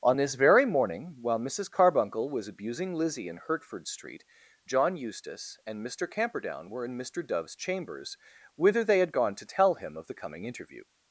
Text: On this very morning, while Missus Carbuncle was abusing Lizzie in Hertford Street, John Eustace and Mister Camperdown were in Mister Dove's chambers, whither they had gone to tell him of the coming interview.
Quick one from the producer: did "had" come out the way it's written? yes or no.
yes